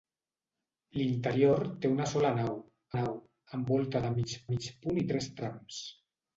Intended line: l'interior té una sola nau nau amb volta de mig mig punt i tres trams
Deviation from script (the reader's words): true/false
false